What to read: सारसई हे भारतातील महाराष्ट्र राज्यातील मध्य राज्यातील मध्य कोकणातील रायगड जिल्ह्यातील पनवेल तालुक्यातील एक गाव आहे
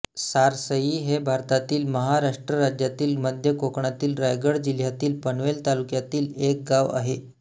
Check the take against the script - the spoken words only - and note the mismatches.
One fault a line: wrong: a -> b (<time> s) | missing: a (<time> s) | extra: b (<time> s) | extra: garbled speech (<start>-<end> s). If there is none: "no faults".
missing: राज्यातील मध्य (3.5 s)